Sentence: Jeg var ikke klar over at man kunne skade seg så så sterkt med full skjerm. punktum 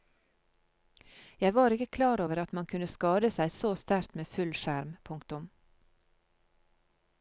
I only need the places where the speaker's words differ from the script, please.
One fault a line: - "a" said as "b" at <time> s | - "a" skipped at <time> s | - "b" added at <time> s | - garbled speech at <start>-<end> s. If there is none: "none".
- "så" skipped at 3.7 s